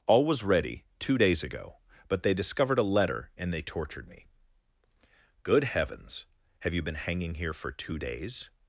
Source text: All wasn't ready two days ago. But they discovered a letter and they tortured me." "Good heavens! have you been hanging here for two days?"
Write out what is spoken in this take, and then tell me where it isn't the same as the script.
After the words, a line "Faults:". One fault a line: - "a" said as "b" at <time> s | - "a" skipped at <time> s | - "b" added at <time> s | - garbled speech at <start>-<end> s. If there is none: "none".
All was ready two days ago. But they discovered a letter and they tortured me." "Good heavens! have you been hanging here for two days?"
Faults:
- "wasn't" said as "was" at 0.2 s